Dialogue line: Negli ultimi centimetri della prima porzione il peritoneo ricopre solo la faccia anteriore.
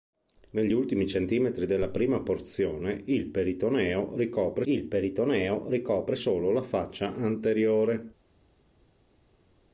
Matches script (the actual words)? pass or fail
fail